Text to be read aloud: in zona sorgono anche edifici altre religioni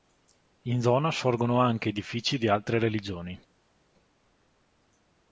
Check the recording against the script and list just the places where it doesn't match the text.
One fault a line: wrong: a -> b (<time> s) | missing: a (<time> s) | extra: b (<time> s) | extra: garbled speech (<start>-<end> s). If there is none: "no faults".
extra: di (2.4 s)